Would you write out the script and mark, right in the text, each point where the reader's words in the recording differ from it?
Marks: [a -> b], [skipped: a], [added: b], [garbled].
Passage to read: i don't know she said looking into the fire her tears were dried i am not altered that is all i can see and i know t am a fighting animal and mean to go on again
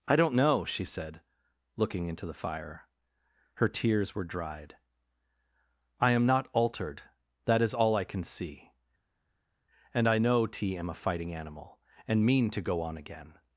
i don't know she said looking into the fire her tears were dried i am not altered that is all i can see and i know t am a fighting animal and mean to go on again